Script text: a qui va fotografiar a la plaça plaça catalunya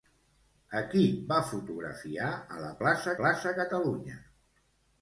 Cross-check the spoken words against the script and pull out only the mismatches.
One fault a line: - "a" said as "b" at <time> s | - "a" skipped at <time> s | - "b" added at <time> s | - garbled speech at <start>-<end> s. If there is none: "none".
none